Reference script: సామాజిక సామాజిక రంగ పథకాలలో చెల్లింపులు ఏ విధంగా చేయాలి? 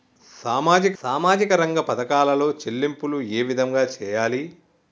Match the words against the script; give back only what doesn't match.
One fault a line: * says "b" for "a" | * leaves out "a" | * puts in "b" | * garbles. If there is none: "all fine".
all fine